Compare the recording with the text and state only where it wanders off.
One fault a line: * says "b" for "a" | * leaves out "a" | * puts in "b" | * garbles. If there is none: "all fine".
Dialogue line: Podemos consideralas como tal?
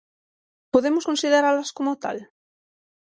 all fine